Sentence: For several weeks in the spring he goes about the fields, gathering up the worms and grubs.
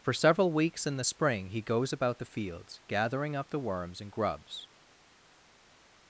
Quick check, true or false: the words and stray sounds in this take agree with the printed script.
true